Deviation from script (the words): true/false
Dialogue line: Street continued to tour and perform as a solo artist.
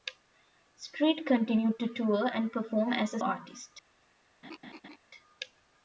true